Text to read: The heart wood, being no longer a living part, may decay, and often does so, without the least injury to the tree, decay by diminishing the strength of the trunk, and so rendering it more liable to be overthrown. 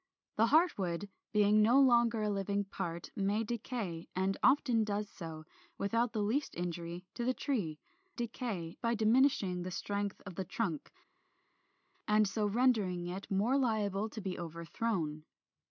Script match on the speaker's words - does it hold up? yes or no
yes